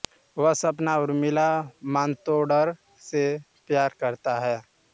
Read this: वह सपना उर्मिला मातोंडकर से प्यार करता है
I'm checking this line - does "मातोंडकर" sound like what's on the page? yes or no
yes